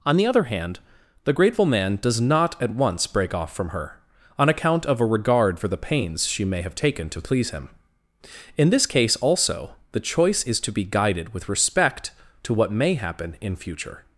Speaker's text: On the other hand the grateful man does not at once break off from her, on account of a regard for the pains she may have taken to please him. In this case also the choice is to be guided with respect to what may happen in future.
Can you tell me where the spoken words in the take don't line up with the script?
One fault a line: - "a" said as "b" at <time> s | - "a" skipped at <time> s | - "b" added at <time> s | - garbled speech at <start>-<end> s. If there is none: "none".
none